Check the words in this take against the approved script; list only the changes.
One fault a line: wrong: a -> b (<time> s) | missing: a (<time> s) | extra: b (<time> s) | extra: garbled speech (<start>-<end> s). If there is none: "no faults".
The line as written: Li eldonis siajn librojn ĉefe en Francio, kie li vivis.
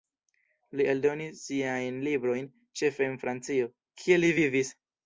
no faults